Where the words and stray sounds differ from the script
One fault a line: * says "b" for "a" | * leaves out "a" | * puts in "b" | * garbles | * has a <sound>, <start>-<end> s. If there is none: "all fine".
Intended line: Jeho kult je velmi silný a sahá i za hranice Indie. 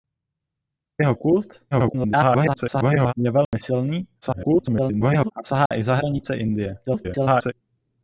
* garbles
* has a dropout, 3.4-3.5 s
* garbles
* has a dropout, 5.7-5.7 s
* garbles